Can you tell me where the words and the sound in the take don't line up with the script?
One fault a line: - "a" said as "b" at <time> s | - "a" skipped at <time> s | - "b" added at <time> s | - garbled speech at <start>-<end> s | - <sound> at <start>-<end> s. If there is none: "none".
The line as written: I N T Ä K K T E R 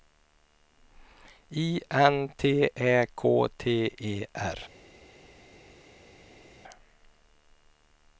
- "K" skipped at 3.5 s